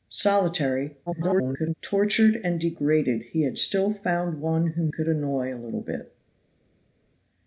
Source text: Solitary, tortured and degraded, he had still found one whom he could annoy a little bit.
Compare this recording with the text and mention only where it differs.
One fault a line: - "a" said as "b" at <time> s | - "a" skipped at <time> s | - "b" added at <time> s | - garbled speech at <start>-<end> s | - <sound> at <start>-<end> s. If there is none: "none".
- garbled speech at 1.1-1.7 s
- "he" skipped at 4.9 s